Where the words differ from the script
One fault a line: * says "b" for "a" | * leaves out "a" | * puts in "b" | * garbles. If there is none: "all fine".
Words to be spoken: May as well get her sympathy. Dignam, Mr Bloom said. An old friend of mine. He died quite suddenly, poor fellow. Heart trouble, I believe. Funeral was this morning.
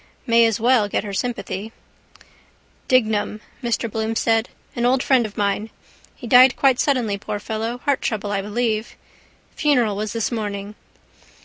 all fine